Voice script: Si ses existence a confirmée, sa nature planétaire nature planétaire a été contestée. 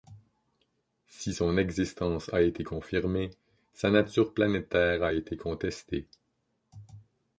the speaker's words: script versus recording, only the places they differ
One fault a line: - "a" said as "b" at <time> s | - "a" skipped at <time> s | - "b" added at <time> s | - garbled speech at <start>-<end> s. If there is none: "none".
- "ses" said as "son" at 1.3 s
- "été" added at 2.4 s
- "nature planétaire" skipped at 5.0 s